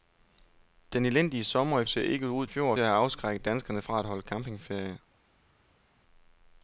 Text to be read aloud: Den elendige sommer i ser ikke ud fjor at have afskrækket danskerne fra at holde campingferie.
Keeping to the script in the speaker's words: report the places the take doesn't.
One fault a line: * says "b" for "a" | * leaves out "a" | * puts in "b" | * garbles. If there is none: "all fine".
all fine